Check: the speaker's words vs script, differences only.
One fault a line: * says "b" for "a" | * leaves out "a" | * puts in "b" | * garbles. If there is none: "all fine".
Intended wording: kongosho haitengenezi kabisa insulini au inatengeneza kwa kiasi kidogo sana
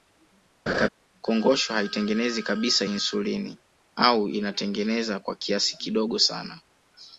all fine